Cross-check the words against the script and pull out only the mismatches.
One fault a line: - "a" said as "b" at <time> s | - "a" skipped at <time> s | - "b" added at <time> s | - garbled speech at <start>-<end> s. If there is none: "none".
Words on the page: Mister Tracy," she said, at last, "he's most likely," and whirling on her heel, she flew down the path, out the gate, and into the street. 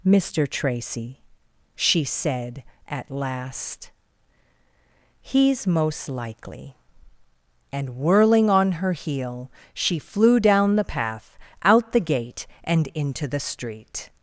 none